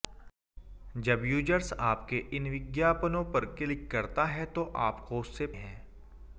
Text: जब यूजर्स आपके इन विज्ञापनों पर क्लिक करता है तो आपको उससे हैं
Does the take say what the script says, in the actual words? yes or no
yes